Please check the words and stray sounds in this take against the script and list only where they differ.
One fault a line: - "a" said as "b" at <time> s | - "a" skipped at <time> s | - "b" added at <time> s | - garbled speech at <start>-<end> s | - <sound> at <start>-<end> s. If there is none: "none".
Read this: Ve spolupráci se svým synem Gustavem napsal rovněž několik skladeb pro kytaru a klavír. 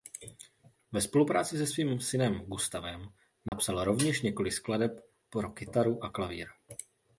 - dropout at 3.5-3.5 s